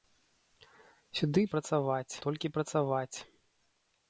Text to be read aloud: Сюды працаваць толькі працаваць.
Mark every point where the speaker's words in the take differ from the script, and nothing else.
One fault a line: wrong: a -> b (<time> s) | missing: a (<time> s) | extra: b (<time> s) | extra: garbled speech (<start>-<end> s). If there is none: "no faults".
no faults